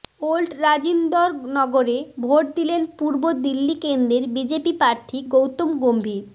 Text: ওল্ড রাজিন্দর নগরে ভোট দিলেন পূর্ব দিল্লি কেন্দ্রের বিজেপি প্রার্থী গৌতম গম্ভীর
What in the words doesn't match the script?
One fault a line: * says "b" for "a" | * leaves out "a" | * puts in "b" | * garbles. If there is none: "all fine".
all fine